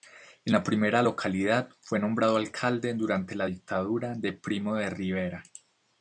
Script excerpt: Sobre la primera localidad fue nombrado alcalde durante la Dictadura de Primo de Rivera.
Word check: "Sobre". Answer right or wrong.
wrong